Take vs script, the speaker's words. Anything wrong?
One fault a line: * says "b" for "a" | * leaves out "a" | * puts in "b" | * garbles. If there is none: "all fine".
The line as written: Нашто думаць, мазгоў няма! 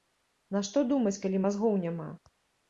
* puts in "калі"